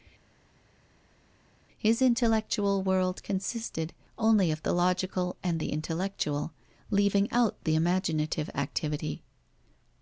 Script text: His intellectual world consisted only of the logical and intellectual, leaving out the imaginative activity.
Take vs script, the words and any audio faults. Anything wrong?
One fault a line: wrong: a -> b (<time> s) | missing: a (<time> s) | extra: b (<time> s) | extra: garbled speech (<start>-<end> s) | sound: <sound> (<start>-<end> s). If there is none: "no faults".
extra: the (5.6 s)